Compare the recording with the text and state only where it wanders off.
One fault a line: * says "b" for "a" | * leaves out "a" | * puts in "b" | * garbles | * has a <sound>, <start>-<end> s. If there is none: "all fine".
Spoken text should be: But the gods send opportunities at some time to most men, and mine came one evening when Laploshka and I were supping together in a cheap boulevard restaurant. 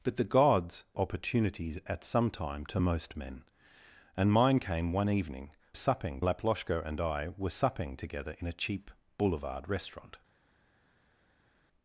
* leaves out "send"
* says "supping" for "when"